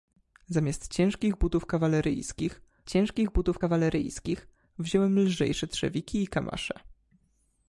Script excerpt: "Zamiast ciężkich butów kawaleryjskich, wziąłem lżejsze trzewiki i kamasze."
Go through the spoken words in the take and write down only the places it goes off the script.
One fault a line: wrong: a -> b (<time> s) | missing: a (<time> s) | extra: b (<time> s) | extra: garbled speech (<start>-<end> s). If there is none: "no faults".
extra: ciężkich butów kawaleryjskich (2.9 s)